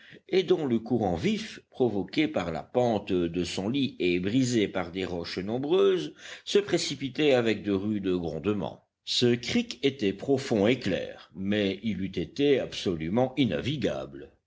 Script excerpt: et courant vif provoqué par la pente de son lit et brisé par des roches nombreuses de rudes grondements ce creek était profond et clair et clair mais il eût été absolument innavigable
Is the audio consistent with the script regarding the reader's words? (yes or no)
no